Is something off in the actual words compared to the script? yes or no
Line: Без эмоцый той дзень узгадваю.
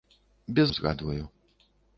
yes